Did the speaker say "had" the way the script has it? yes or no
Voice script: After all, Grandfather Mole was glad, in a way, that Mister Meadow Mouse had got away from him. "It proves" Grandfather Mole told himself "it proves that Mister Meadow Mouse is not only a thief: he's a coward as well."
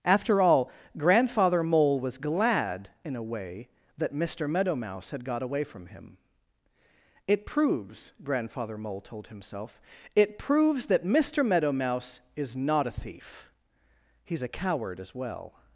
yes